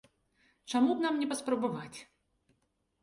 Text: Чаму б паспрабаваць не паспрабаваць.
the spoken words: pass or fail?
fail